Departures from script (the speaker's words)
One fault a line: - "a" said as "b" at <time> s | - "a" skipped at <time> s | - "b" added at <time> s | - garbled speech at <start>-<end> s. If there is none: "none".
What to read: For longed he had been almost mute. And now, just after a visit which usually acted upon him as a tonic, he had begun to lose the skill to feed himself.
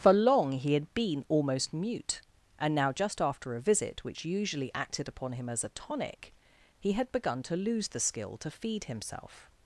- "longed" said as "long" at 0.1 s